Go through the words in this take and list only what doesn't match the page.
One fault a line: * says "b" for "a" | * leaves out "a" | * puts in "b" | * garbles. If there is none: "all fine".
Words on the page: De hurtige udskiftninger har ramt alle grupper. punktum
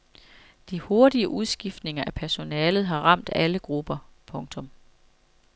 * puts in "af personalet"